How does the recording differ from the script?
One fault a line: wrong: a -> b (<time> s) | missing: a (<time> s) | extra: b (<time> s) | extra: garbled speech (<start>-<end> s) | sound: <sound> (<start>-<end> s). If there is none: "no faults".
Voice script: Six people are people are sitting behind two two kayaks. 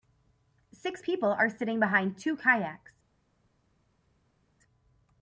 missing: people are (1.5 s)
missing: two (2.4 s)